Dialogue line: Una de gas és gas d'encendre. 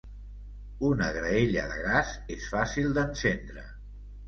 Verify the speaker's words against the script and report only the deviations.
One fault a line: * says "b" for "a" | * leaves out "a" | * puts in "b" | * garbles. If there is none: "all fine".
* puts in "graella"
* says "fàcil" for "gas"